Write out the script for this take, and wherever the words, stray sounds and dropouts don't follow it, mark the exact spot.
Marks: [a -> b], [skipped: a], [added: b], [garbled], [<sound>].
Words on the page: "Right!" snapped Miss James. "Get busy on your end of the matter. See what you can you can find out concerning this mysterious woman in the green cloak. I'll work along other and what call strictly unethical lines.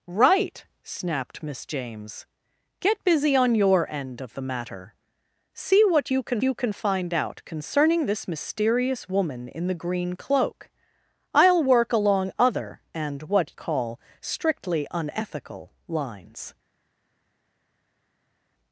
"Right!" snapped Miss James. "Get busy on your end of the matter. See what you can you can find out concerning this mysterious woman in the green cloak. I'll work along other and what call strictly unethical lines.